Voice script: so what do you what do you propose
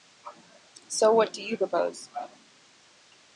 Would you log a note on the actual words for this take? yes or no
yes